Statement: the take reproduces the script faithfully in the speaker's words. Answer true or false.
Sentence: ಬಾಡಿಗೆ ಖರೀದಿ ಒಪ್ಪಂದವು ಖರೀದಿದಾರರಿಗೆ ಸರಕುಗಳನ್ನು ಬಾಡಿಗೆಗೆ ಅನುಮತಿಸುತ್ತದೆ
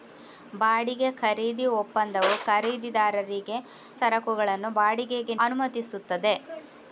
true